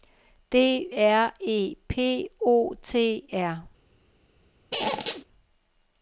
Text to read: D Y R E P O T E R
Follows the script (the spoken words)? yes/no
no